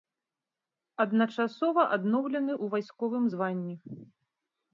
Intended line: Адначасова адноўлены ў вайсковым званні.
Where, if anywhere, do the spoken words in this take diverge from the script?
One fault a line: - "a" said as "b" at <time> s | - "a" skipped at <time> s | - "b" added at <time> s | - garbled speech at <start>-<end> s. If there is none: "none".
none